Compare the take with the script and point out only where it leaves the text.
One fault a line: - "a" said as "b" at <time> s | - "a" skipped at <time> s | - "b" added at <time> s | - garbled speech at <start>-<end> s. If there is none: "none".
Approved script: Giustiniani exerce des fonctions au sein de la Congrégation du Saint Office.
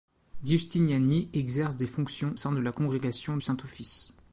- "au" skipped at 2.4 s
- "du" skipped at 3.4 s